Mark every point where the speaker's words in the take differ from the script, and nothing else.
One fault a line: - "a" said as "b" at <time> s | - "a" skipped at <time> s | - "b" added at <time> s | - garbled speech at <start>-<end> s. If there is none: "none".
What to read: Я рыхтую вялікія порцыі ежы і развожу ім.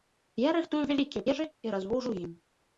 - "порцыі" skipped at 1.2 s